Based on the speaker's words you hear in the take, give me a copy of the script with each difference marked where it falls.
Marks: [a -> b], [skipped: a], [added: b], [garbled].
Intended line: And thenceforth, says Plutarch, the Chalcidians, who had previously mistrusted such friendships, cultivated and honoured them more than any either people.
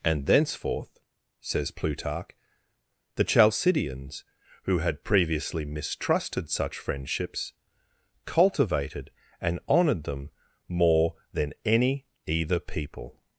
And thenceforth, says Plutarch, the Chalcidians, who had previously mistrusted such friendships, cultivated and honoured them more than any either people.